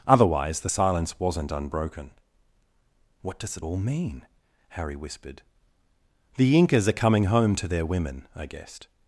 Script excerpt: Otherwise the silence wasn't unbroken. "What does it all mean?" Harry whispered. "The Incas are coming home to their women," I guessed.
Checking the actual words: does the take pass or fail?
pass